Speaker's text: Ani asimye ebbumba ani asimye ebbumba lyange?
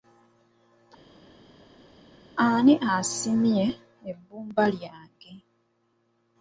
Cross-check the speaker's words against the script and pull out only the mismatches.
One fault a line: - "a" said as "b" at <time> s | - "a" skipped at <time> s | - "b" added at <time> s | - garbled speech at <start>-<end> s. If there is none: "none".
- "ani asimye ebbumba" skipped at 4.6 s